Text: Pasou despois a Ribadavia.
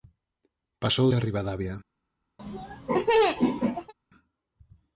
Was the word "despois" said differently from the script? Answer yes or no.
yes